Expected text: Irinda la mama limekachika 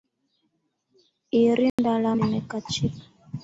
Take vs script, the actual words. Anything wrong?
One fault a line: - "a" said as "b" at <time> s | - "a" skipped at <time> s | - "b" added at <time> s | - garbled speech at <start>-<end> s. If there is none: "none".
- "mama" skipped at 2.1 s